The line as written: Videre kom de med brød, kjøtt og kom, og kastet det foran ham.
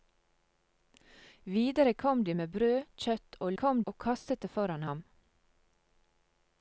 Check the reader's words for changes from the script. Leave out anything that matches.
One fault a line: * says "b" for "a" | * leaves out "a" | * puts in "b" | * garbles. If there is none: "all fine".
all fine